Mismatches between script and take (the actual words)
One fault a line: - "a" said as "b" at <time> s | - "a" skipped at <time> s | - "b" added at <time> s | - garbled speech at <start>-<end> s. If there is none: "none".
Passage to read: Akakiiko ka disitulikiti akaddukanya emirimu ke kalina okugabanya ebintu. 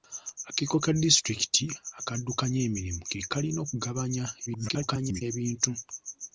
- garbled speech at 4.5-5.2 s